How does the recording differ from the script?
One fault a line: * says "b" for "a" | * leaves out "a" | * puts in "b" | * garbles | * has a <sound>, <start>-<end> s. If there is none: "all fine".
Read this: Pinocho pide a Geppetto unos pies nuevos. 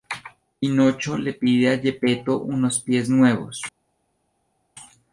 * puts in "le"